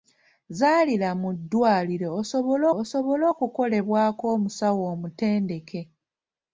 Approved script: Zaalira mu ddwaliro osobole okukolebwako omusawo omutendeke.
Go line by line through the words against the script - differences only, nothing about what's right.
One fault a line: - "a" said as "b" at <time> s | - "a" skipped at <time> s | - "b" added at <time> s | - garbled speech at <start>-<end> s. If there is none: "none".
- "osobole" added at 2.8 s